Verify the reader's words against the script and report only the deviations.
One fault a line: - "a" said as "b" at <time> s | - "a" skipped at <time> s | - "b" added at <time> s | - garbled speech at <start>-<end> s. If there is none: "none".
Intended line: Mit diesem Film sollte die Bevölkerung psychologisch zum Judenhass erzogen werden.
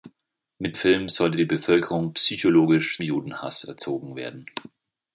- "diesem" skipped at 0.8 s
- "zum" skipped at 3.0 s